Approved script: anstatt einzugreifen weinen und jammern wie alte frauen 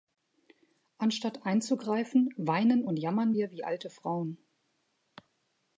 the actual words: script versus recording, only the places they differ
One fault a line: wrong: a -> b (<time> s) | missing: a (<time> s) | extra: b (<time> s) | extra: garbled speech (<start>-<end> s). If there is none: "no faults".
extra: wir (3.3 s)